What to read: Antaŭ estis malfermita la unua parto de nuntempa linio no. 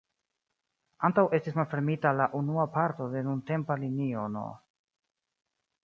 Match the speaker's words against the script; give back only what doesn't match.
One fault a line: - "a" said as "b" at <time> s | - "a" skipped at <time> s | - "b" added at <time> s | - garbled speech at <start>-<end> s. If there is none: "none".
none